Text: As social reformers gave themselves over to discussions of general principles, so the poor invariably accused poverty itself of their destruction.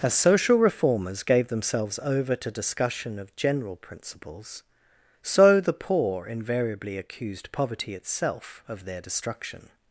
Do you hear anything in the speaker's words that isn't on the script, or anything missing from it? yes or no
yes